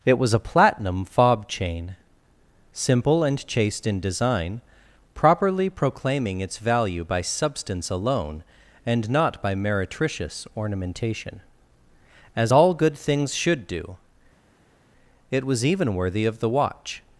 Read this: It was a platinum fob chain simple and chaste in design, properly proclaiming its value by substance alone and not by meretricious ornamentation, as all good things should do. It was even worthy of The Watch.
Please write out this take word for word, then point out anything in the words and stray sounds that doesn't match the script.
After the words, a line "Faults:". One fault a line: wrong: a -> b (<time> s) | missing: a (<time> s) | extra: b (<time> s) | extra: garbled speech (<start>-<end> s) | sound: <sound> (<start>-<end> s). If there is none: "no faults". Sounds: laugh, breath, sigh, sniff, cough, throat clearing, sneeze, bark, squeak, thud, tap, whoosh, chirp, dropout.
It was a platinum fob chain simple and chaste in design, properly proclaiming its value by substance alone and not by meretricious ornamentation, as all good things should do. It was even worthy of The Watch.
Faults:
no faults